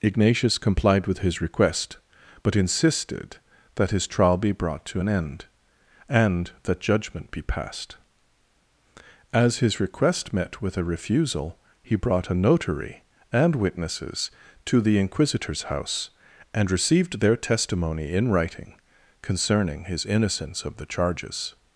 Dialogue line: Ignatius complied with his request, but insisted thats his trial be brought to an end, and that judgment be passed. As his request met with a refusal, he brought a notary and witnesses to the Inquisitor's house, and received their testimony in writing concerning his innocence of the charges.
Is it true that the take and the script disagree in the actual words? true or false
true